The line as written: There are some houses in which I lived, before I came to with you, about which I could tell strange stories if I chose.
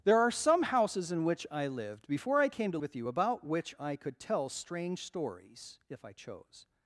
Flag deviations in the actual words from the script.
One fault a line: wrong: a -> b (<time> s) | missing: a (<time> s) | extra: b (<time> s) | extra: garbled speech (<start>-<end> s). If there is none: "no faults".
no faults